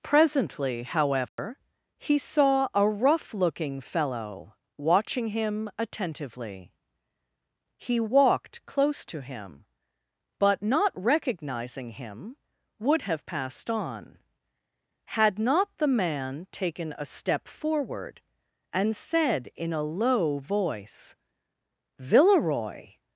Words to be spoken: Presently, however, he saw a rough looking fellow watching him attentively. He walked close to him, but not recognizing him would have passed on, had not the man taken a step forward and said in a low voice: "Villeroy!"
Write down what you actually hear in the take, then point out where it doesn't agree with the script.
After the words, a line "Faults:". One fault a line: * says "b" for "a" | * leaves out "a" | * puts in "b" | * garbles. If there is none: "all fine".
Presently, however, he saw a rough looking fellow watching him attentively. He walked close to him, but not recognizing him would have passed on, had not the man taken a step forward and said in a low voice: "Villeroy!"
Faults:
all fine